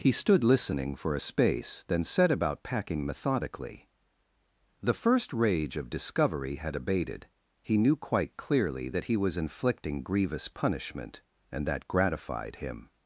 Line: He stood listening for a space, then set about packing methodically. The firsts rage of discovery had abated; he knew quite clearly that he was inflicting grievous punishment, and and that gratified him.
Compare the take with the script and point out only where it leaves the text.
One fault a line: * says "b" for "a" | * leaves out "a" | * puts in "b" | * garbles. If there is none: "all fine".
* says "first" for "firsts"
* leaves out "and"